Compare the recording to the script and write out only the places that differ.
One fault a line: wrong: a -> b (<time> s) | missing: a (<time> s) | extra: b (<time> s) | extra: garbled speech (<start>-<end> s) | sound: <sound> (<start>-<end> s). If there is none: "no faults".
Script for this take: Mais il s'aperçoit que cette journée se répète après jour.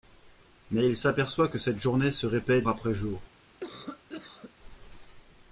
sound: cough (3.6-4.5 s)